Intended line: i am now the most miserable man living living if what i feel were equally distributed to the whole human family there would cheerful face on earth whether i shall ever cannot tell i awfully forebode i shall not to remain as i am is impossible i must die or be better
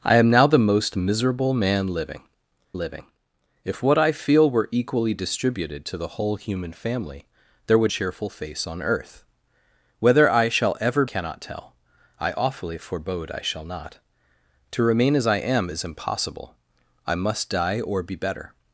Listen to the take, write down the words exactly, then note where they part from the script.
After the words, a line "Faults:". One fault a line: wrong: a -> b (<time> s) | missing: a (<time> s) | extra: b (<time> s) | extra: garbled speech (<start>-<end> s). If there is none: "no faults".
i am now the most miserable man living living if what i feel were equally distributed to the whole human family there would cheerful face on earth whether i shall ever cannot tell i awfully forebode i shall not to remain as i am is impossible i must die or be better
Faults:
no faults